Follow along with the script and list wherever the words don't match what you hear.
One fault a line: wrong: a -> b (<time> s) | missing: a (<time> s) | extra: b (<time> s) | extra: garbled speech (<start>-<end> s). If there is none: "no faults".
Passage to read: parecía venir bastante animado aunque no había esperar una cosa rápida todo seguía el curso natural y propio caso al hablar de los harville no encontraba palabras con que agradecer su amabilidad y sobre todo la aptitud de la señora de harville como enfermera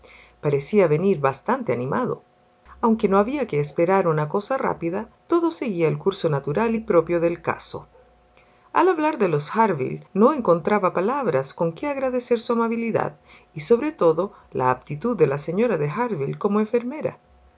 extra: que (3.5 s)
extra: del (7.2 s)